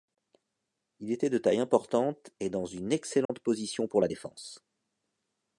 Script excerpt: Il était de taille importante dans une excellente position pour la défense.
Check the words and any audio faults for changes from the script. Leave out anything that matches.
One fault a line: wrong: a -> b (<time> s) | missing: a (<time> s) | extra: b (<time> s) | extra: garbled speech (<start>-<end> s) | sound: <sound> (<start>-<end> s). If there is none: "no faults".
extra: et (2.4 s)
sound: dropout (3.3-3.3 s)